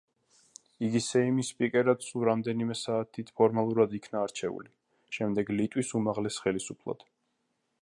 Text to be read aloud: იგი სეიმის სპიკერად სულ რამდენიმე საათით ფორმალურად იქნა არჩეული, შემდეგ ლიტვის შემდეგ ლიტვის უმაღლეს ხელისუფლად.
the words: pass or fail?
fail